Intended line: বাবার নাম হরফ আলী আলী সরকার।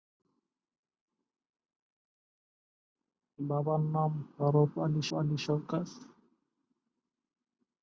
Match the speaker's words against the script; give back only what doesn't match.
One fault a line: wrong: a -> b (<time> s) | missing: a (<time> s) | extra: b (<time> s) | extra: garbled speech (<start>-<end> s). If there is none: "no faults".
no faults